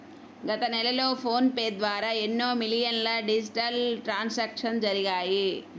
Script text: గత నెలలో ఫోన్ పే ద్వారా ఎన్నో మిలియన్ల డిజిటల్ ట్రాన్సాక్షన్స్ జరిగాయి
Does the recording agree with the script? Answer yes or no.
yes